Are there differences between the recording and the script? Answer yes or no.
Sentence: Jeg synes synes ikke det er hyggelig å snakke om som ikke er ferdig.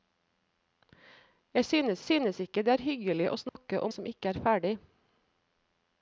no